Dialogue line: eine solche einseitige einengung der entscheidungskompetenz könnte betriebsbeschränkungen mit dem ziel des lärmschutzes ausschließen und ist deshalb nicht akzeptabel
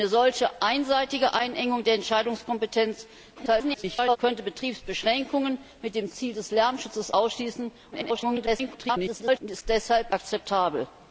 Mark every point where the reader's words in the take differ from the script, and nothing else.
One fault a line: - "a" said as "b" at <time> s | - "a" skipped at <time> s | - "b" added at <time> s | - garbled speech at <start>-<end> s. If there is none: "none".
- garbled speech at 3.3-4.2 s
- garbled speech at 7.9-9.4 s
- "nicht" skipped at 10.1 s